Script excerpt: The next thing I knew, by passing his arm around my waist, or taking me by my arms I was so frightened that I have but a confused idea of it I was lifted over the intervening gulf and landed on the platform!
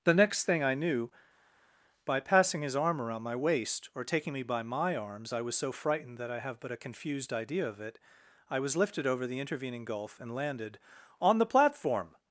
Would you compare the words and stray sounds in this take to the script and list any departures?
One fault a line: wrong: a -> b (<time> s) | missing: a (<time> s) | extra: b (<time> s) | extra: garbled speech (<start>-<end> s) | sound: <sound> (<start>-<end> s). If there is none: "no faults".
no faults